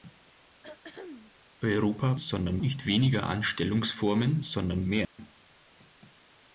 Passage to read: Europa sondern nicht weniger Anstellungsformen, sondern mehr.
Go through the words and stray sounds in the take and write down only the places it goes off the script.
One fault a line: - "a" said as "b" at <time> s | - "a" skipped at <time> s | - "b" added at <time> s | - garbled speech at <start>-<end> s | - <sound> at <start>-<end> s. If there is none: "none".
- throat clearing at 0.6-1.3 s
- dropout at 5.0-5.2 s